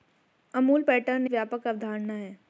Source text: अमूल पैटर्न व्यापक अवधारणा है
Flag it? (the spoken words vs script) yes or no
no